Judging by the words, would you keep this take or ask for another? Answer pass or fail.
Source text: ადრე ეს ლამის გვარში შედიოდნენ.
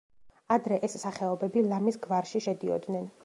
fail